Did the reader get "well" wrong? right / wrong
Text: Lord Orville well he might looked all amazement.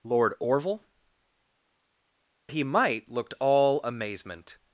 wrong